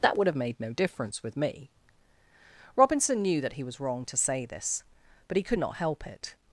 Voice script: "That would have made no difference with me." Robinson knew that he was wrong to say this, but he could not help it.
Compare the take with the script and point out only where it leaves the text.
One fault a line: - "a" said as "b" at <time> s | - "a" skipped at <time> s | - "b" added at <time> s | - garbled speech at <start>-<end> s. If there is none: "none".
none